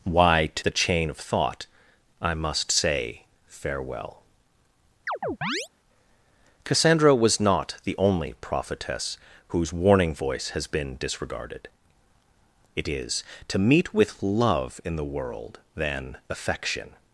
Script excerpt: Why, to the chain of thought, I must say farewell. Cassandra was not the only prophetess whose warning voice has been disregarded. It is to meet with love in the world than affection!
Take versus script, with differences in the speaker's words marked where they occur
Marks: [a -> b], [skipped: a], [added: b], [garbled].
Why, to the chain of thought, I must say farewell. Cassandra was not the only prophetess whose warning voice has been disregarded. It is to meet with love in the world than affection!